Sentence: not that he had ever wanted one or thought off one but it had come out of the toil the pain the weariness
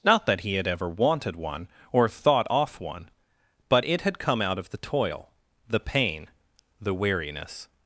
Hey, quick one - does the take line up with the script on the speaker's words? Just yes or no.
yes